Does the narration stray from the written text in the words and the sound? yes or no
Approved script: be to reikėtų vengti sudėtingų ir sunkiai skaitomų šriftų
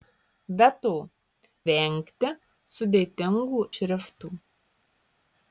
yes